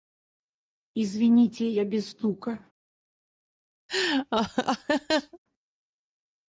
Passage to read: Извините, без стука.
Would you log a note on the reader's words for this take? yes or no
yes